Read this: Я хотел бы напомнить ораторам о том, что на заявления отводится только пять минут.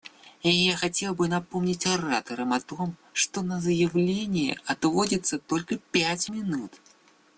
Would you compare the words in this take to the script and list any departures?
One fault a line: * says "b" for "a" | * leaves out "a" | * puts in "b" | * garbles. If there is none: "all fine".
all fine